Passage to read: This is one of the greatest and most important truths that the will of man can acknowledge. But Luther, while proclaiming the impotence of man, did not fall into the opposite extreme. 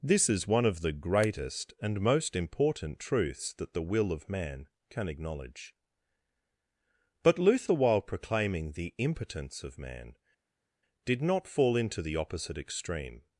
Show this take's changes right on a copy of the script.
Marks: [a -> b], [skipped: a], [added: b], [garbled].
This is one of the greatest and most important truths that the will of man can acknowledge. But Luther, while proclaiming the impotence of man, did not fall into the opposite extreme.